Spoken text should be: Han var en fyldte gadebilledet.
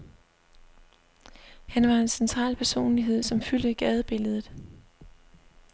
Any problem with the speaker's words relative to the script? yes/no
yes